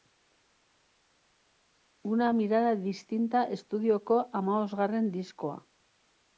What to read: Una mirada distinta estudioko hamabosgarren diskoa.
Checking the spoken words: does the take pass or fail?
pass